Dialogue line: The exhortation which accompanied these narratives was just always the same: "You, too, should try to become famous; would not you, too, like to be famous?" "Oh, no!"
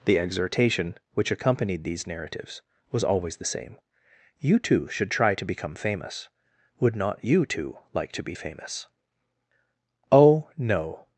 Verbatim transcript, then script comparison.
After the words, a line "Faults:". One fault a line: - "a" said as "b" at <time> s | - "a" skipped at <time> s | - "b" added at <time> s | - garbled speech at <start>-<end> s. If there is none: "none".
The exhortation which accompanied these narratives was always the same: "You, too, should try to become famous; would not you, too, like to be famous?" "Oh, no!"
Faults:
- "just" skipped at 3.0 s